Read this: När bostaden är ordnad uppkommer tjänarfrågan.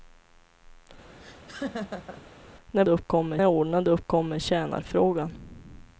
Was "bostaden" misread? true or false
true